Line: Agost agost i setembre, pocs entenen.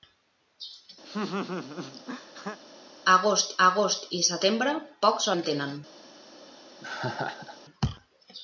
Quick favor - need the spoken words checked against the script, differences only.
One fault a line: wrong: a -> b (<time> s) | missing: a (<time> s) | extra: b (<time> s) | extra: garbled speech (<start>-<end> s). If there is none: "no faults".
no faults